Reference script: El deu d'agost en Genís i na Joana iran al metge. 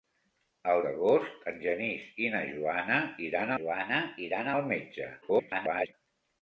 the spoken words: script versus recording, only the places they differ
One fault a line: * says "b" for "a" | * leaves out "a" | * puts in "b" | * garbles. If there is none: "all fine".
* leaves out "deu"
* puts in "Joana iran"
* garbles